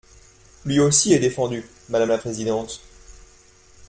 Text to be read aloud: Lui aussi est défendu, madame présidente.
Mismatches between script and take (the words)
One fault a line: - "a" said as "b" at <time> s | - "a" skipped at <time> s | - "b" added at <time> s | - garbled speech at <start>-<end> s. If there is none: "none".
- "la" added at 2.1 s